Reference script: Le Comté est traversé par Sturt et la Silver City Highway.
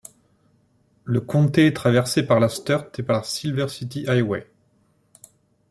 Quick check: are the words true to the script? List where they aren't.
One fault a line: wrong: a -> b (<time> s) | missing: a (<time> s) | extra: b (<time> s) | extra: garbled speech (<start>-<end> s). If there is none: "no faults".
extra: la (2.4 s)
extra: par (3.0 s)